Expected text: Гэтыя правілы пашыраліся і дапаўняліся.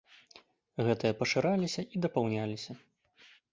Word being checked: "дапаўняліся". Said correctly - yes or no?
yes